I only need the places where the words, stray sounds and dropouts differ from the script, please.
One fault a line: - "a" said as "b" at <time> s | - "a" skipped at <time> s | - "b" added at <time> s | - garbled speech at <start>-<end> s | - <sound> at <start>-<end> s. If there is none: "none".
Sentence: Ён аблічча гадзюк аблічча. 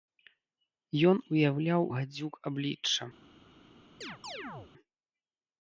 - "аблічча" said as "уяўляў" at 1.3 s
- chirp at 4.0-4.7 s